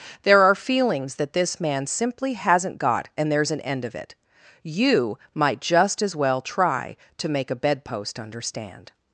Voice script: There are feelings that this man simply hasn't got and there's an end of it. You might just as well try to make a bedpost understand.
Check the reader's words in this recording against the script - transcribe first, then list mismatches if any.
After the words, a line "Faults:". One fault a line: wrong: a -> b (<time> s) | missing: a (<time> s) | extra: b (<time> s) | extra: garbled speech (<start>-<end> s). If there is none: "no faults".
There are feelings that this man simply hasn't got and there's an end of it. You might just as well try to make a bedpost understand.
Faults:
no faults